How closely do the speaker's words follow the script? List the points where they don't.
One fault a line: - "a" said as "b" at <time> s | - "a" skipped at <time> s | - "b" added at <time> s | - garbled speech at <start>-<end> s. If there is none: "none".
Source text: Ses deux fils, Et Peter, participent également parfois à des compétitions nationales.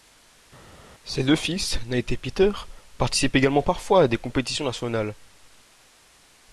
- "Nate" added at 1.9 s